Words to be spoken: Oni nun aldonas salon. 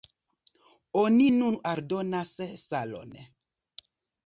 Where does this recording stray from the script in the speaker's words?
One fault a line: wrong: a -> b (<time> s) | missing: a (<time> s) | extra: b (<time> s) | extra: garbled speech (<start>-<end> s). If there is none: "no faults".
no faults